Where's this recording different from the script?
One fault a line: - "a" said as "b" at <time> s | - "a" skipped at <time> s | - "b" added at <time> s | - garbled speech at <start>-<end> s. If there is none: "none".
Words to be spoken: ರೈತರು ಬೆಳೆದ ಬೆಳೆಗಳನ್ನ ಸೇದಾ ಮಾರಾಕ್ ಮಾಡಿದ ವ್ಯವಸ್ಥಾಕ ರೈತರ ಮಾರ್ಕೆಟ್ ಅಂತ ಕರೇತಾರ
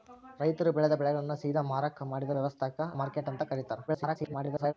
- "ರೈತರ" skipped at 2.8 s
- garbled speech at 3.9-4.7 s